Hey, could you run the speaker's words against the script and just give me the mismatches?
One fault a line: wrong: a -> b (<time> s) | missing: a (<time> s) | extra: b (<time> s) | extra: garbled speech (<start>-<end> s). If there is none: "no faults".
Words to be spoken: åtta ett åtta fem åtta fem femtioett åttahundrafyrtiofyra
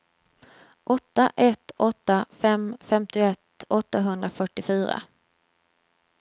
missing: åtta fem (2.8 s)